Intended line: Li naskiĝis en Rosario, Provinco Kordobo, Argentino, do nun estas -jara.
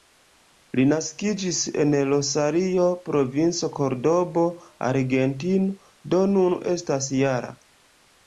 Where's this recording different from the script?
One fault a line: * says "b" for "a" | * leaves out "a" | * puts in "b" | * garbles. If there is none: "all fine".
all fine